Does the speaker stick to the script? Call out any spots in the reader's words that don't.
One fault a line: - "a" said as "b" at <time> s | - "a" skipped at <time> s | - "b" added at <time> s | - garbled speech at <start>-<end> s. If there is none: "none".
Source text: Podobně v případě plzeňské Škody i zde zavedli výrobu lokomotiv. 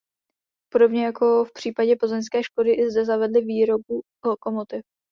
- "jako" added at 1.1 s